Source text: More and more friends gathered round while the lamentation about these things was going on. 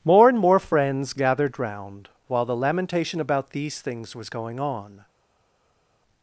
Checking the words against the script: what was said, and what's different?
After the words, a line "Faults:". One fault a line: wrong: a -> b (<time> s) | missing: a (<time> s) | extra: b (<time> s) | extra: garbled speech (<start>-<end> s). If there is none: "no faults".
More and more friends gathered round while the lamentation about these things was going on.
Faults:
no faults